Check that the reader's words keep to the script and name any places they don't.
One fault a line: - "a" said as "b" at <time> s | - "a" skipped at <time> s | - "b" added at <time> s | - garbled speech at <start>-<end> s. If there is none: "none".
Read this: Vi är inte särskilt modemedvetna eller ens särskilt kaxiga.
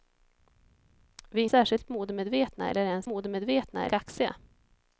- "inte" skipped at 1.4 s
- "särskilt" said as "modemedvetna" at 3.0 s